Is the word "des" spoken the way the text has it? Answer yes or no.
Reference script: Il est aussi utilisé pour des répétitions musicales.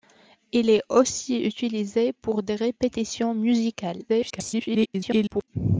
yes